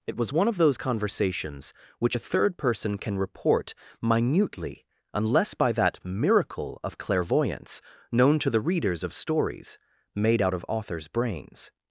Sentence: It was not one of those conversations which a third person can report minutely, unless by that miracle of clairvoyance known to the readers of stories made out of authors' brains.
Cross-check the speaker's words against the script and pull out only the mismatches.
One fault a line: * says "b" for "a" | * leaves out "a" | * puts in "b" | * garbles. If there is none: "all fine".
* leaves out "not"